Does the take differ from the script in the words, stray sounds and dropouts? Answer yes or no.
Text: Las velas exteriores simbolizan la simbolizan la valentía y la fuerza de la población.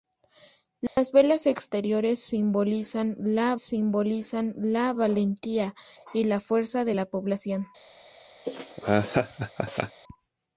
yes